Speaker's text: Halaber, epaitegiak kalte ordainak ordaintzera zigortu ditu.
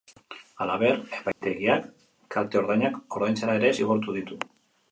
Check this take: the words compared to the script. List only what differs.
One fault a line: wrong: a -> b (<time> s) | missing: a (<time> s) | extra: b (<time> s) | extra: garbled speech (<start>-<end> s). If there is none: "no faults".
extra: ere (3.6 s)